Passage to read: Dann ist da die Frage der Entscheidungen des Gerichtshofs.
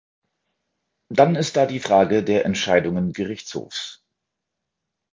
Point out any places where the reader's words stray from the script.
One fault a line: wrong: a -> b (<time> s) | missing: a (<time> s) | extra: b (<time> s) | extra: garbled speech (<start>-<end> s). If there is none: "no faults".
missing: des (3.1 s)